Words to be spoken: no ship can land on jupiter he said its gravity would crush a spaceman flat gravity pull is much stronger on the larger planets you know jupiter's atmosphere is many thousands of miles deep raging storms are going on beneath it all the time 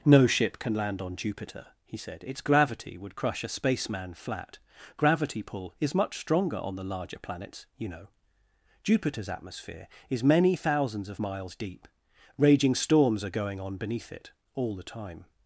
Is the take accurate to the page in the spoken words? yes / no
yes